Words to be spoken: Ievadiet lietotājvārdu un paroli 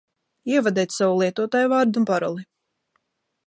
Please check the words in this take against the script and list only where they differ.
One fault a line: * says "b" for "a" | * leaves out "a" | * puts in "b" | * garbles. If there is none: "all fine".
* puts in "savu"